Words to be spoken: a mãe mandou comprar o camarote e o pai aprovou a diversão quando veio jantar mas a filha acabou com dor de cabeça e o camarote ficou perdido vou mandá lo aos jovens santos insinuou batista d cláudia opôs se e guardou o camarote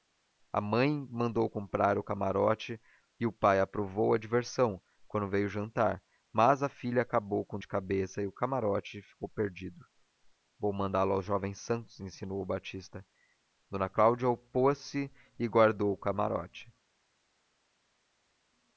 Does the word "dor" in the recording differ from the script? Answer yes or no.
yes